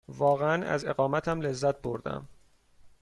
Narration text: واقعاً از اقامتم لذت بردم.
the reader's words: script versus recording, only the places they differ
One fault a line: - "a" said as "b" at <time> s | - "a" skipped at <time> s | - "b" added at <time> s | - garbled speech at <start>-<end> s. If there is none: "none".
none